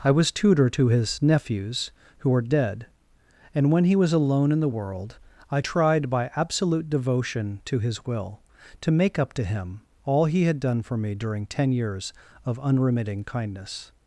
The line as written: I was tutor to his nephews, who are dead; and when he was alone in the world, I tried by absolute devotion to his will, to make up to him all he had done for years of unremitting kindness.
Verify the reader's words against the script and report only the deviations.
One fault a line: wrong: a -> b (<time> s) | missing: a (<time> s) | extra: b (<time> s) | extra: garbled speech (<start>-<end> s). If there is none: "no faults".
extra: me during ten (11.0 s)